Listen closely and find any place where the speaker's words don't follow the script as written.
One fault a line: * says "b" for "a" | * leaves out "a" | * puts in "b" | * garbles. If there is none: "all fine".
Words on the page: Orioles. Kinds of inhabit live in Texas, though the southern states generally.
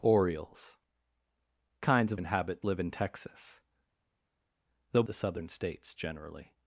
all fine